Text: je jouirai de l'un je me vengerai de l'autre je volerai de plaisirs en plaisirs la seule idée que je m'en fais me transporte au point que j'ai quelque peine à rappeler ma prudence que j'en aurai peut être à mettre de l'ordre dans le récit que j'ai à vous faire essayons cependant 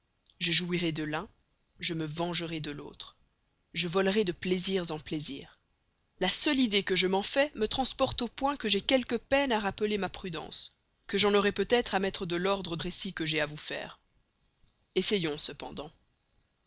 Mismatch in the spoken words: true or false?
true